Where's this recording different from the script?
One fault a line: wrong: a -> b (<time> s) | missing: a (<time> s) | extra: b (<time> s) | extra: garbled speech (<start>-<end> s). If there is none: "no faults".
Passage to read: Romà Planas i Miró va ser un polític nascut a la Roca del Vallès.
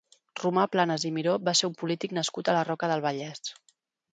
no faults